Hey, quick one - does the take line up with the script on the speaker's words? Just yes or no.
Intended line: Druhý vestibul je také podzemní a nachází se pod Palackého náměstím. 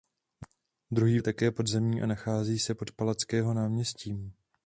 no